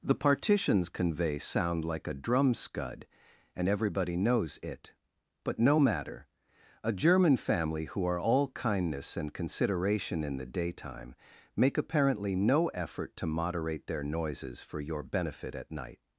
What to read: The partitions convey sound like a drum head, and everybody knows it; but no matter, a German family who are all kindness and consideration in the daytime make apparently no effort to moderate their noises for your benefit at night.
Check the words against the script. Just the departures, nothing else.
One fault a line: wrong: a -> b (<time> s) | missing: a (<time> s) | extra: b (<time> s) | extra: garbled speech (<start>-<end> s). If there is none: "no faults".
wrong: head -> scud (2.5 s)